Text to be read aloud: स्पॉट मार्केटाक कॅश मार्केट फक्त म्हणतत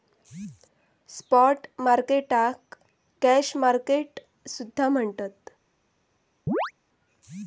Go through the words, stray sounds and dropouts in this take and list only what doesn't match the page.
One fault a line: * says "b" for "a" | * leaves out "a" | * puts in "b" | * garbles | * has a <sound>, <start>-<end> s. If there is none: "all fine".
* says "सुद्धा" for "फक्त"
* has a chirp, 6.5-6.7 s